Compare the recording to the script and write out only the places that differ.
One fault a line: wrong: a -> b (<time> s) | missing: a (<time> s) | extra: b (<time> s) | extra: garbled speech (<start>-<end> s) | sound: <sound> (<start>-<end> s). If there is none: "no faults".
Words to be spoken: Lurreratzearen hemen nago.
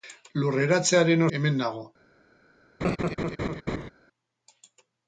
sound: laugh (2.8-3.9 s)